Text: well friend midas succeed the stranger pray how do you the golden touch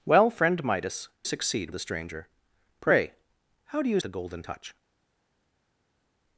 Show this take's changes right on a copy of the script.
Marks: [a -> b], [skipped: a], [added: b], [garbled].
well friend midas succeed the stranger pray how do you the golden touch